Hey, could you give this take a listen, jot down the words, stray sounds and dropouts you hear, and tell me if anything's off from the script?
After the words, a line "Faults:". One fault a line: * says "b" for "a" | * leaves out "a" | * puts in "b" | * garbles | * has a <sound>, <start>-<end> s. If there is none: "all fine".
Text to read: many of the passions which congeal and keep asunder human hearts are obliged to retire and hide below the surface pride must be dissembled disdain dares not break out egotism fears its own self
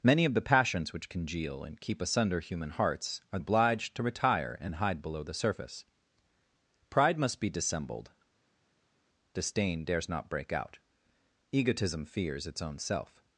many of the passions which congeal and keep asunder human hearts are obliged to retire and hide below the surface pride must be dissembled disdain dares not break out egotism fears its own self
Faults:
all fine